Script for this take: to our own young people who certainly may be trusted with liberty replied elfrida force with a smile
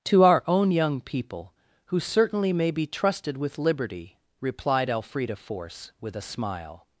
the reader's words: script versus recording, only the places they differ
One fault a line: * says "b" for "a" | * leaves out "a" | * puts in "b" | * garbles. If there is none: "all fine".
all fine